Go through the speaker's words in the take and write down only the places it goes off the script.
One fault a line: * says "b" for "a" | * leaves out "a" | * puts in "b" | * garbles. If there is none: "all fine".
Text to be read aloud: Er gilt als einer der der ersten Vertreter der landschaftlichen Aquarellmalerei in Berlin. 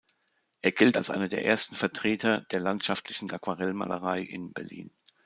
* leaves out "der"